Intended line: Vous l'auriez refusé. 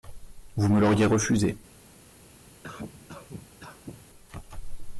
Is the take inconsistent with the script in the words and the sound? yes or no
yes